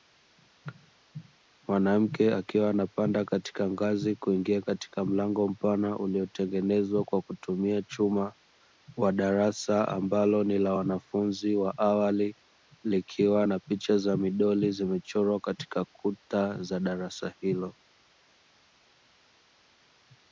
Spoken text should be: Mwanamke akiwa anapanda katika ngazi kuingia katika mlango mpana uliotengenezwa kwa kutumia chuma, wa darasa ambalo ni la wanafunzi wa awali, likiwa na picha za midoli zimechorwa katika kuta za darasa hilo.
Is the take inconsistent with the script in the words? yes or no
no